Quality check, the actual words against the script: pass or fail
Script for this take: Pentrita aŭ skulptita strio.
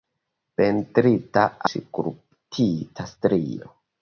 fail